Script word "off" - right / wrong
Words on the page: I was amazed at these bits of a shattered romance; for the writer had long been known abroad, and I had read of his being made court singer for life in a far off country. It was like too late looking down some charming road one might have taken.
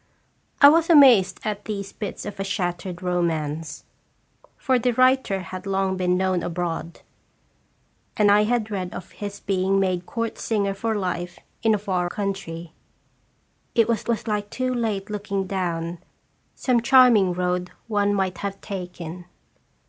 wrong